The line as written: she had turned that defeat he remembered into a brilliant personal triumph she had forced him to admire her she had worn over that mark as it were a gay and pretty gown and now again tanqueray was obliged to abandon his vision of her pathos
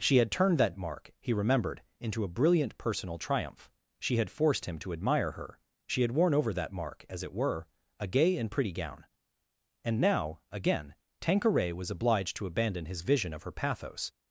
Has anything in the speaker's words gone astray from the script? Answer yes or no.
yes